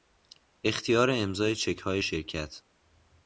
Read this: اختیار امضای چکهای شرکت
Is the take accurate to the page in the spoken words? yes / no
yes